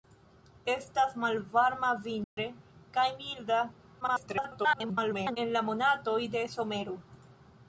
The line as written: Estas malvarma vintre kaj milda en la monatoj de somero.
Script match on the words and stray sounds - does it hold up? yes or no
no